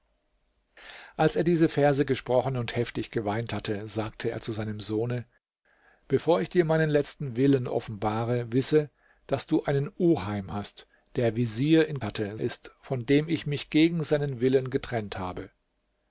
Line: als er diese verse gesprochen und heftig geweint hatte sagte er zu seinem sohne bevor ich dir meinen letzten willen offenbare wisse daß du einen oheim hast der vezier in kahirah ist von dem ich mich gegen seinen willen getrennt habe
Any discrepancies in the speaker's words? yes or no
yes